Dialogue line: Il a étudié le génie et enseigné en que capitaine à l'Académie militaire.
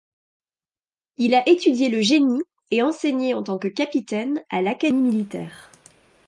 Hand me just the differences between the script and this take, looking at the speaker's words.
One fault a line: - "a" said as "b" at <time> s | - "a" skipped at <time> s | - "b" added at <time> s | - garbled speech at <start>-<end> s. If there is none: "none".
- "tant" added at 3.4 s